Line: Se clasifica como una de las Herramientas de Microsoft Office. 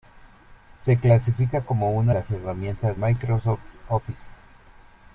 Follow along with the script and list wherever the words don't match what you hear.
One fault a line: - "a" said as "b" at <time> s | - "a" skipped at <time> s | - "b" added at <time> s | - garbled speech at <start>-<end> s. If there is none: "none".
- "de" skipped at 2.1 s
- "de" skipped at 3.0 s